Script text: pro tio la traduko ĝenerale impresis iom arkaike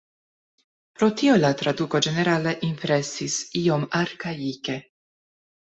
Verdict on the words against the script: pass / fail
pass